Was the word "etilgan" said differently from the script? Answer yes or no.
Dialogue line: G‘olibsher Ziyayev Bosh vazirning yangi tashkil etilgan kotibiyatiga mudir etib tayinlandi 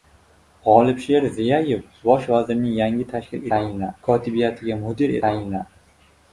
yes